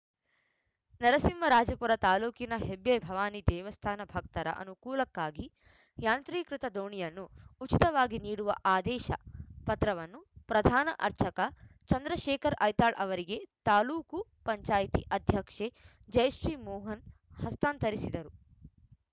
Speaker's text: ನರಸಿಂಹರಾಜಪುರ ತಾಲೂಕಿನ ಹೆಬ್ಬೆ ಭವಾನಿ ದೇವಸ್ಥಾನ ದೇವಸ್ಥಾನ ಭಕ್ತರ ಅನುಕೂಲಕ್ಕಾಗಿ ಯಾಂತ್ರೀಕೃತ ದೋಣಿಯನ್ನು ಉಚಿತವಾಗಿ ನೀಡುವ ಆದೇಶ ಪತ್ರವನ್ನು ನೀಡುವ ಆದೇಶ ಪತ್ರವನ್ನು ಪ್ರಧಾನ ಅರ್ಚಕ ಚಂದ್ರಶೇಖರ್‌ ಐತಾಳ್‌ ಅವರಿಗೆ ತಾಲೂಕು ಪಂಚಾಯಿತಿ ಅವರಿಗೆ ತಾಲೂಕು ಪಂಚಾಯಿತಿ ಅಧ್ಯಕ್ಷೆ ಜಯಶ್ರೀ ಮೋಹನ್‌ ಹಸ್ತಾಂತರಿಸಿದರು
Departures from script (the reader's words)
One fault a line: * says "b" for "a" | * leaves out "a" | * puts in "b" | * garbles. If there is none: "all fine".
* leaves out "ದೇವಸ್ಥಾನ"
* leaves out "ನೀಡುವ ಆದೇಶ ಪತ್ರವನ್ನು"
* leaves out "ಅವರಿಗೆ ತಾಲೂಕು ಪಂಚಾಯಿತಿ"